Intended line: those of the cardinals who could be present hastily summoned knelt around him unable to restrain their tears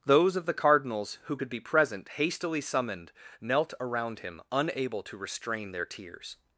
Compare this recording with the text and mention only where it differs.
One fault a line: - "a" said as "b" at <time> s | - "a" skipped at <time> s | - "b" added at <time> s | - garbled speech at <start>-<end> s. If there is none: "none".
none